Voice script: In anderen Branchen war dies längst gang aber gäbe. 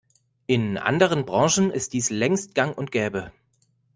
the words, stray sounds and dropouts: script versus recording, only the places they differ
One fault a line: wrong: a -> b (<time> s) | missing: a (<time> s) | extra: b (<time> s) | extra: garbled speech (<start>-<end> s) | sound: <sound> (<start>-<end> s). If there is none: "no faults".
wrong: war -> ist (1.7 s)
wrong: aber -> und (2.8 s)